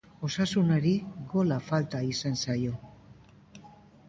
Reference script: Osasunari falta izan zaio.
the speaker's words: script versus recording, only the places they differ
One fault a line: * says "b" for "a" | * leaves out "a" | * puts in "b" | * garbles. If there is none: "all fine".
* puts in "gola"